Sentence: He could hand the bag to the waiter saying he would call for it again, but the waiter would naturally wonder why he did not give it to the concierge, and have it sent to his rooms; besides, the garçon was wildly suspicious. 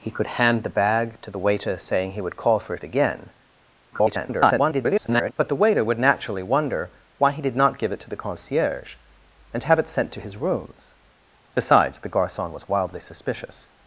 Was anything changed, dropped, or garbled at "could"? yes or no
no